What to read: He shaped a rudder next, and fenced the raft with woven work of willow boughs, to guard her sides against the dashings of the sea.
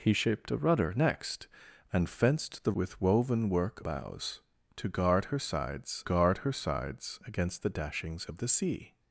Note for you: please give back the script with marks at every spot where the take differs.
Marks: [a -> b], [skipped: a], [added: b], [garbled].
He shaped a rudder next, and fenced the [skipped: raft] with woven work [of willow boughs, to -> boughs to guard her sides] guard her sides against the dashings of the sea.